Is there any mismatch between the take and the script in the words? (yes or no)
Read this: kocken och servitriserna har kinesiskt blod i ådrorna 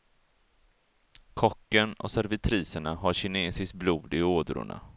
no